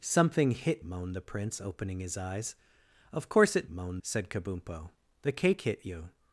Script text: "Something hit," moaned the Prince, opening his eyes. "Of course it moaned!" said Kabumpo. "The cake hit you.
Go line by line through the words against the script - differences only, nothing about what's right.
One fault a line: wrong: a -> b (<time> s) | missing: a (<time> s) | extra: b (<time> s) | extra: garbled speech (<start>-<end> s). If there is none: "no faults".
no faults